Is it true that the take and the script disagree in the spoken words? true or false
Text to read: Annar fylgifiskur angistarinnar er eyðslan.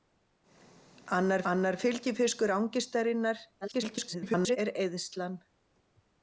true